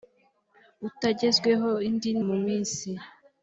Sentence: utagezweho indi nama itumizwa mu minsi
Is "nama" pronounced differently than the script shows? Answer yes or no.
yes